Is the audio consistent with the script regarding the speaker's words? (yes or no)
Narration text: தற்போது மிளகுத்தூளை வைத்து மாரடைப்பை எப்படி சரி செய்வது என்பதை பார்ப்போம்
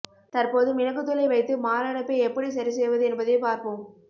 yes